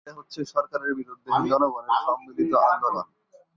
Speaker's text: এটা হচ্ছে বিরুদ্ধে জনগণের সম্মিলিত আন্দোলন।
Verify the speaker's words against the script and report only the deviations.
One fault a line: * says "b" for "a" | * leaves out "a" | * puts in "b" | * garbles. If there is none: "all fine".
* puts in "সরকারের"